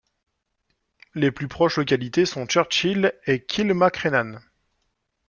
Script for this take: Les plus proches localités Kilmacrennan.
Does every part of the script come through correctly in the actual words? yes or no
no